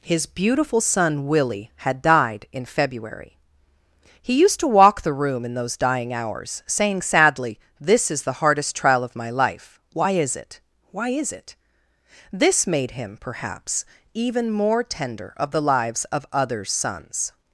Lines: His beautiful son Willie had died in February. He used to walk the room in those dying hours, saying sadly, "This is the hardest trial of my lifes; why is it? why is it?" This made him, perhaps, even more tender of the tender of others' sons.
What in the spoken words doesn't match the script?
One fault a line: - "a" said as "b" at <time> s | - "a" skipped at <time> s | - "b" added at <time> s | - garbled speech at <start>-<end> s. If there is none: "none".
- "lifes" said as "life" at 9.3 s
- "tender" said as "lives" at 15.6 s